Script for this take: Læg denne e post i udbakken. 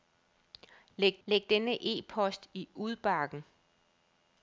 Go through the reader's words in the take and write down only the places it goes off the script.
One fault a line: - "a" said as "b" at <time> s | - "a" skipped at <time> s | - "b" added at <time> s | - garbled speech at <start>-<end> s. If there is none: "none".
- "læg" added at 1.2 s